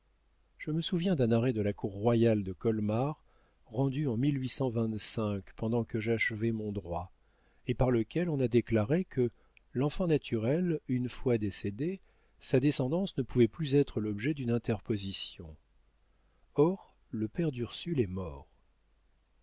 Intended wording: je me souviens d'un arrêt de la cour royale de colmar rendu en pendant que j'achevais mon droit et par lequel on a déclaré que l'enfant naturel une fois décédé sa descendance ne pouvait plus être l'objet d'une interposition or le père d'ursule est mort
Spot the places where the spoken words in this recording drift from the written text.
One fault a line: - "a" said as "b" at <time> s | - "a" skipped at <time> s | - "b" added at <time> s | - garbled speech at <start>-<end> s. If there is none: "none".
none